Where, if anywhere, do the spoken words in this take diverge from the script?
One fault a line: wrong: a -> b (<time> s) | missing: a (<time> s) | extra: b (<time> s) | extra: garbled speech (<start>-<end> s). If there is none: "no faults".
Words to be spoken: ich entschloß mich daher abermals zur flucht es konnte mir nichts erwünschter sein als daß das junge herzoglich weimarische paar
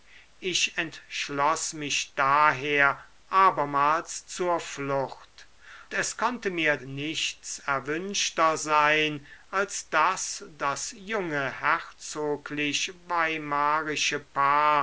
no faults